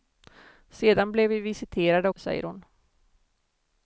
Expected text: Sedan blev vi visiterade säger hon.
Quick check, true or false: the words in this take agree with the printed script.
true